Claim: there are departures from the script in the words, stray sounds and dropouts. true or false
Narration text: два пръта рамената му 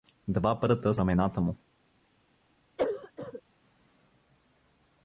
true